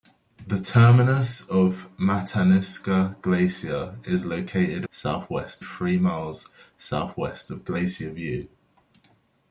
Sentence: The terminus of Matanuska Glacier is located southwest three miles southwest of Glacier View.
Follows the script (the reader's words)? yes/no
yes